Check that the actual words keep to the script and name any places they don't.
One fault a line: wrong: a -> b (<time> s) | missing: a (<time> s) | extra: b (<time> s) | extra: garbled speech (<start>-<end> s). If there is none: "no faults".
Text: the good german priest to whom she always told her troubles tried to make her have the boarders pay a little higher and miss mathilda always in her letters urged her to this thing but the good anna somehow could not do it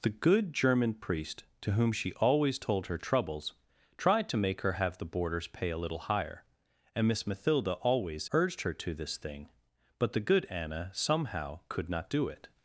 missing: in her letters (8.3 s)